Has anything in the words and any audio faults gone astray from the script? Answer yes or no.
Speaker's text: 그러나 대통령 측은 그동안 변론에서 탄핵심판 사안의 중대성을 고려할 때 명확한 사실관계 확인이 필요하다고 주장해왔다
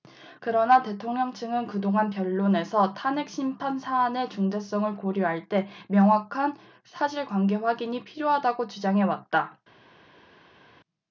no